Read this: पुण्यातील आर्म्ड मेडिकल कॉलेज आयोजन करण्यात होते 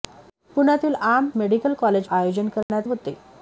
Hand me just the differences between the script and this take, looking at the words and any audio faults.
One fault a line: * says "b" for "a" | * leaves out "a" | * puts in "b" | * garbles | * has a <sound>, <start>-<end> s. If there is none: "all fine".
* has a dropout, 2.6-2.7 s